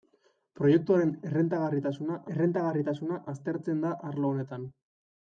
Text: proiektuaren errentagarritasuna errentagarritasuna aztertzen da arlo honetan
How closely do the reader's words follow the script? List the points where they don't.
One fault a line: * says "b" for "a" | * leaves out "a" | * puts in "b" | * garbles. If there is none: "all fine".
all fine